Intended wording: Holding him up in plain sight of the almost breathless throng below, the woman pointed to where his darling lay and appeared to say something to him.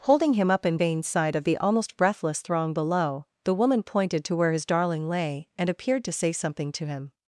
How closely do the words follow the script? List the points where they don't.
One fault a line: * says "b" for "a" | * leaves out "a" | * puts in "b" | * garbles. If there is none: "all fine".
* says "vain" for "plain"